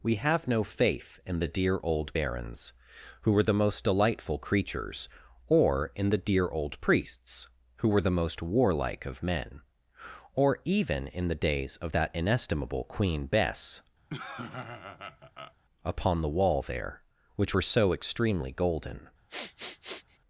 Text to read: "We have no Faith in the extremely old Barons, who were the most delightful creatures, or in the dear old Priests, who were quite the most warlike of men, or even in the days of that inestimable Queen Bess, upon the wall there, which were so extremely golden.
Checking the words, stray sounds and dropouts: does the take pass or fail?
fail